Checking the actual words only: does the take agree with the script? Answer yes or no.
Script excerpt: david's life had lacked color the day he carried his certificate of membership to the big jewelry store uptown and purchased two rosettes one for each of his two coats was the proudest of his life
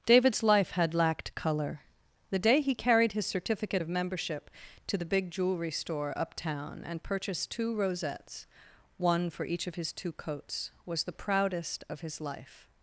yes